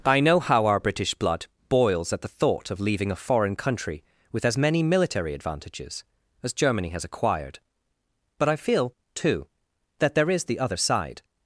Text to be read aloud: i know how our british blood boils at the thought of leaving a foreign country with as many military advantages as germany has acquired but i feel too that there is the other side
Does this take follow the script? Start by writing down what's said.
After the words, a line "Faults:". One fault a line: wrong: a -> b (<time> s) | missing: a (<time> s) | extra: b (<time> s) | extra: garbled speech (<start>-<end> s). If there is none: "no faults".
i know how our british blood boils at the thought of leaving a foreign country with as many military advantages as germany has acquired but i feel too that there is the other side
Faults:
no faults